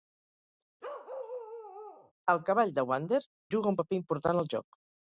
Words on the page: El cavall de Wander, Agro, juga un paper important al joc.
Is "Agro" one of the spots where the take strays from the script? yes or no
yes